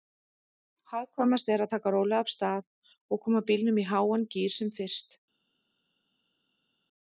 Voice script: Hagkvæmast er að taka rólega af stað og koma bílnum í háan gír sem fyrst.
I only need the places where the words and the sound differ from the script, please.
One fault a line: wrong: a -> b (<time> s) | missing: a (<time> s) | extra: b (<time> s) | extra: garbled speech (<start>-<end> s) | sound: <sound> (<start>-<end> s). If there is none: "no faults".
no faults